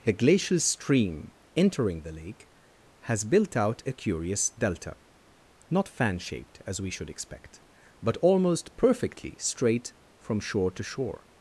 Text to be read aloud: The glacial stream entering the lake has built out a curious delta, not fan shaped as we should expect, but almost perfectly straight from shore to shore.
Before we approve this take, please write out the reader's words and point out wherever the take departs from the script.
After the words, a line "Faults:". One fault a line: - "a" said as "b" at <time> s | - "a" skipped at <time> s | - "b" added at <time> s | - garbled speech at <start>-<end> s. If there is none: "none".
A glacial stream entering the lake has built out a curious delta, not fan shaped as we should expect, but almost perfectly straight from shore to shore.
Faults:
- "The" said as "A" at 0.1 s